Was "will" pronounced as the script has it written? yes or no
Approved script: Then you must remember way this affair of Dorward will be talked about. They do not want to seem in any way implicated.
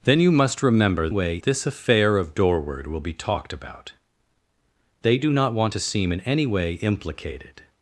yes